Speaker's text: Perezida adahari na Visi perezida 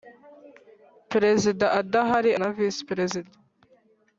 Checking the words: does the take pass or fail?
pass